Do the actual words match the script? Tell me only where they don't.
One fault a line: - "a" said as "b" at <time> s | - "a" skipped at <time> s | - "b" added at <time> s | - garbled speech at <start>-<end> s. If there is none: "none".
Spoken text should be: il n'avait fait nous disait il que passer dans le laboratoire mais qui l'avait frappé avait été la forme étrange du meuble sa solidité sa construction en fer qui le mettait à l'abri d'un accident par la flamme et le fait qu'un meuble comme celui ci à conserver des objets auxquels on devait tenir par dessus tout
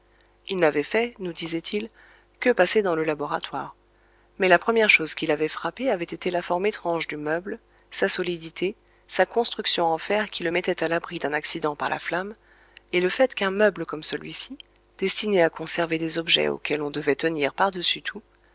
- "la première chose" added at 4.5 s
- "destiné" added at 15.0 s